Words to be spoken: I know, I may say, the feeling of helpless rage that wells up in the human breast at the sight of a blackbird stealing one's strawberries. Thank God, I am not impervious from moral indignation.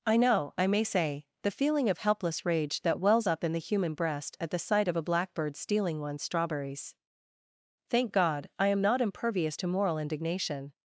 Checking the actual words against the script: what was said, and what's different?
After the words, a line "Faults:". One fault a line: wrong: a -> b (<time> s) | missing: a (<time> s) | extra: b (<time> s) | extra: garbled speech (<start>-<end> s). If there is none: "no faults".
I know, I may say, the feeling of helpless rage that wells up in the human breast at the sight of a blackbird stealing one's strawberries. Thank God, I am not impervious to moral indignation.
Faults:
wrong: from -> to (9.6 s)